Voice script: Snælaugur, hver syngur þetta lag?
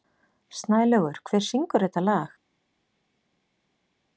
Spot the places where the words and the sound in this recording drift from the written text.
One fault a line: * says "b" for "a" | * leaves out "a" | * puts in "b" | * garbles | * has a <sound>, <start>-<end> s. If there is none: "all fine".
all fine